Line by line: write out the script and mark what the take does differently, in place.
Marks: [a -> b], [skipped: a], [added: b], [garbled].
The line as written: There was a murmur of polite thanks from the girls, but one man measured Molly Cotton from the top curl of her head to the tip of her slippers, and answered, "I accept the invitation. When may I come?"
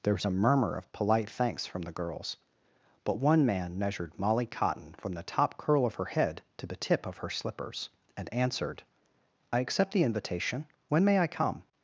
There was a murmur of polite thanks from the girls, but one man measured Molly Cotton from the top curl of her head to the tip of her slippers, and answered, "I accept the invitation. When may I come?"